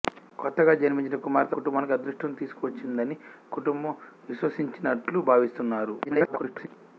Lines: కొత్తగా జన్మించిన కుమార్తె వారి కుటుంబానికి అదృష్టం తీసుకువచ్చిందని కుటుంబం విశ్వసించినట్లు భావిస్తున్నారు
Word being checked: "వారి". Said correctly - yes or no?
no